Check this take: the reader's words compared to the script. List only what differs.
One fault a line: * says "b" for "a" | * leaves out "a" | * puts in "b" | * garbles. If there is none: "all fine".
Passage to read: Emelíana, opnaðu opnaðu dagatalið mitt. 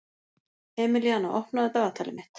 * leaves out "opnaðu"